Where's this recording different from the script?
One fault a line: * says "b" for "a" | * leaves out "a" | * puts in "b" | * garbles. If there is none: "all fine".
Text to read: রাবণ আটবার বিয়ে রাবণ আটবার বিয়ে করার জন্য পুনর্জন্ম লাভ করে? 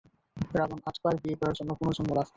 * leaves out "রাবণ আটবার বিয়ে"